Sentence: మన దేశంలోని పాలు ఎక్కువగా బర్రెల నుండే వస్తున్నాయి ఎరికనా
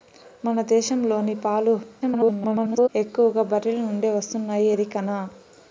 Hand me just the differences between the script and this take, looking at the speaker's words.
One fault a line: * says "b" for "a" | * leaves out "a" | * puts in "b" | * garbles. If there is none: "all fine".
* garbles